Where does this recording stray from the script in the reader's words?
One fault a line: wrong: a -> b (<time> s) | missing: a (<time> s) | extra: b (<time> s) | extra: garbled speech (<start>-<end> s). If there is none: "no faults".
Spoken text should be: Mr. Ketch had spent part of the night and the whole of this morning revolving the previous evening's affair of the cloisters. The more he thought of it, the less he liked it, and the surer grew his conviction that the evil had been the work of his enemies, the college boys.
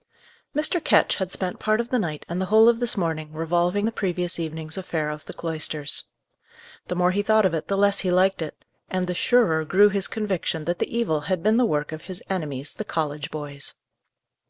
no faults